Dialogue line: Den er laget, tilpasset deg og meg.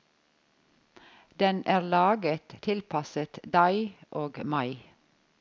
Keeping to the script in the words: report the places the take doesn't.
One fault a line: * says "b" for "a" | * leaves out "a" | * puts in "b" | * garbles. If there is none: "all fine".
all fine